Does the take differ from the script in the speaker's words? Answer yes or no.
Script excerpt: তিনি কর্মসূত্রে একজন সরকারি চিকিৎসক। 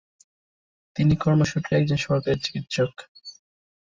no